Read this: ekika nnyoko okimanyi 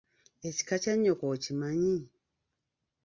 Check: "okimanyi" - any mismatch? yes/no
no